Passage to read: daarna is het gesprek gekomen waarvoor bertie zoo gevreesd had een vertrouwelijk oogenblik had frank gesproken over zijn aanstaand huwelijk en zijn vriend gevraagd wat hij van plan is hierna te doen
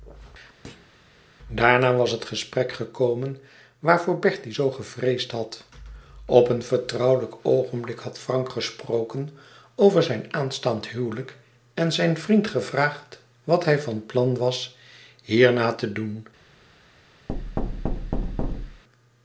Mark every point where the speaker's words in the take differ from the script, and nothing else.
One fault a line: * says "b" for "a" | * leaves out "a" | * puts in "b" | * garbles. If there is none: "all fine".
* says "was" for "is"
* puts in "op"
* says "was" for "is"